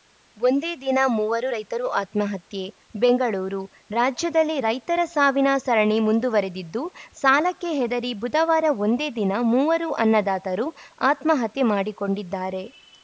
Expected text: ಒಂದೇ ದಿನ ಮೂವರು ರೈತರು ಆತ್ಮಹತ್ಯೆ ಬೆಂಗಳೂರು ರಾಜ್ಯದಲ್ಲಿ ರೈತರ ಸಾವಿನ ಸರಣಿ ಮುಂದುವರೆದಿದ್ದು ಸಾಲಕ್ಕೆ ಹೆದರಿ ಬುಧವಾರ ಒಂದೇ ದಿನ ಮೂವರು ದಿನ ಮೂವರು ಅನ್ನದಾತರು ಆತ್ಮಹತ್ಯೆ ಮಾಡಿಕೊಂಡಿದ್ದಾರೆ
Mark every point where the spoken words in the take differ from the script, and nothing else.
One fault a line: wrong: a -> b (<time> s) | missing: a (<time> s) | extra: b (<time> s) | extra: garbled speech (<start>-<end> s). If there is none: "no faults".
missing: ದಿನ ಮೂವರು (9.9 s)